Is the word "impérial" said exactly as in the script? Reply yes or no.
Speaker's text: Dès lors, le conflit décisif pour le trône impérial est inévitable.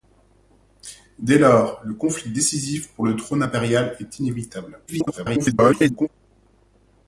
yes